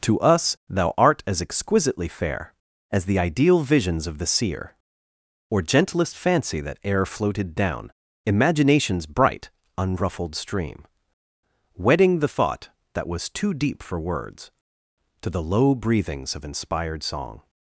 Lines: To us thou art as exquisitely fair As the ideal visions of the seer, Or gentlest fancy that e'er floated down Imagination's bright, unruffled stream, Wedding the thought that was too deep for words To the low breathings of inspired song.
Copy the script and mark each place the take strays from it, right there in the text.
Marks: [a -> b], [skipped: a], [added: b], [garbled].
To us thou art as exquisitely fair As the ideal visions of the seer, Or gentlest fancy that e'er floated down Imagination's bright, unruffled stream, Wedding the thought that was too deep for words To the low breathings of inspired song.